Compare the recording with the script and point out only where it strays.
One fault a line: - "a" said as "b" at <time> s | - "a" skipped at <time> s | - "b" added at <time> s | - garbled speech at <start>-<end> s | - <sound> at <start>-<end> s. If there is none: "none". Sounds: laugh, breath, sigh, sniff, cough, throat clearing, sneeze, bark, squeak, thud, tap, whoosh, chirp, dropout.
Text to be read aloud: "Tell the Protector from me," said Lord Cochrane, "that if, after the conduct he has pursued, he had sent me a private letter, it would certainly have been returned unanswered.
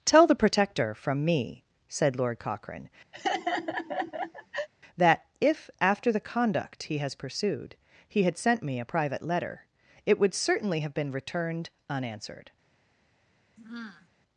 - laugh at 3.1-4.7 s
- sigh at 13.6-14.1 s